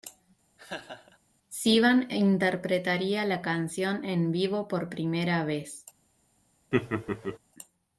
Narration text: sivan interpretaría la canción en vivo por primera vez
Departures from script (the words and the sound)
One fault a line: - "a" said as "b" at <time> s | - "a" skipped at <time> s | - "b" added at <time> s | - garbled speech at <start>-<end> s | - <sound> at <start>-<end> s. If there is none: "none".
- laugh at 0.6-1.2 s
- laugh at 6.7-7.4 s